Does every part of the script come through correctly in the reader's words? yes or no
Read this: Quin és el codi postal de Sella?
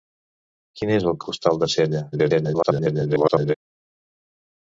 no